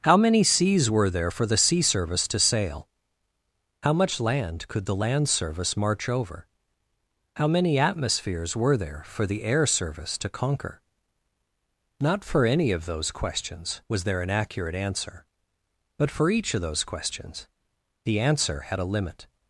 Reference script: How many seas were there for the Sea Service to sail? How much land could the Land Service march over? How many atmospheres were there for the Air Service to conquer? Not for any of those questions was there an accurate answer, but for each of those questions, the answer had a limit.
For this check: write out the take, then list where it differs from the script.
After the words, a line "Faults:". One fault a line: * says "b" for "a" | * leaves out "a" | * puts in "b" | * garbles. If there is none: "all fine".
How many seas were there for the Sea Service to sail? How much land could the Land Service march over? How many atmospheres were there for the Air Service to conquer? Not for any of those questions was there an accurate answer, but for each of those questions, the answer had a limit.
Faults:
all fine